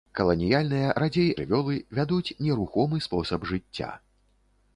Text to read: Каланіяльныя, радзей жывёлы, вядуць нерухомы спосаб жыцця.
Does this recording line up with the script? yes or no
yes